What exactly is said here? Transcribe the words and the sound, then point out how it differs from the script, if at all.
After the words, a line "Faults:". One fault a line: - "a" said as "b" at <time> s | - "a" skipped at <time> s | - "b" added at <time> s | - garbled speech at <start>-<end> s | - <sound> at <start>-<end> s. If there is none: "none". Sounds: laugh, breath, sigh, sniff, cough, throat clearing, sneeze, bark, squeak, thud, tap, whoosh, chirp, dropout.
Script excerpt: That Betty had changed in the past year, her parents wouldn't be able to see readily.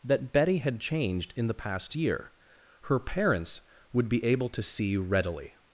That Betty had changed in the past year, her parents would be able to see readily.
Faults:
- "wouldn't" said as "would" at 3.9 s